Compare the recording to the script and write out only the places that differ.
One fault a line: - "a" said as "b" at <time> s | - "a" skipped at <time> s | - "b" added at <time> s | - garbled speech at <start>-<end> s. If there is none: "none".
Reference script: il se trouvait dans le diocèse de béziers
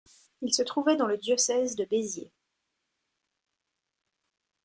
none